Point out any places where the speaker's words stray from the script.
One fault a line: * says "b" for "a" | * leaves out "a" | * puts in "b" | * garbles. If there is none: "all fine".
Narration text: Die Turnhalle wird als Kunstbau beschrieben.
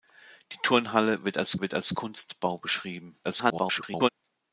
* puts in "wird als"
* garbles